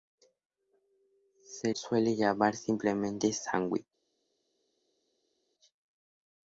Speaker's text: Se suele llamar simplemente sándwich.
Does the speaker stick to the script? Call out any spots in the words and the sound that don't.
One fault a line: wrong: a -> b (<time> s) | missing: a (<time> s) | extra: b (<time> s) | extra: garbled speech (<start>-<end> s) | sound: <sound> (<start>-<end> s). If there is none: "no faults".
no faults